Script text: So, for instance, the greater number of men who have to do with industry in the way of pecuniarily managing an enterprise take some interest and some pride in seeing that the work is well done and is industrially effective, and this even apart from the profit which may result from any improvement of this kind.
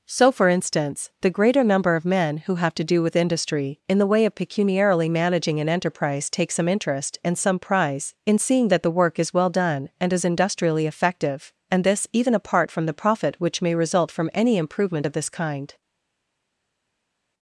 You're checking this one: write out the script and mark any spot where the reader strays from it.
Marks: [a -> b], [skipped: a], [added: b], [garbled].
So, for instance, the greater number of men who have to do with industry in the way of pecuniarily managing an enterprise take some interest and some [pride -> prize] in seeing that the work is well done and is industrially effective, and this even apart from the profit which may result from any improvement of this kind.